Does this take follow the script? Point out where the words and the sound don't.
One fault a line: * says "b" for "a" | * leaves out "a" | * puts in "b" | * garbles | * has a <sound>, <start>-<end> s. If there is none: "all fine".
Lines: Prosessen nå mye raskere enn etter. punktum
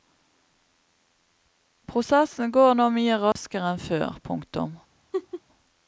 * puts in "går"
* has a dropout, 3.3-3.4 s
* says "før" for "etter"
* has a laugh, 5.1-5.4 s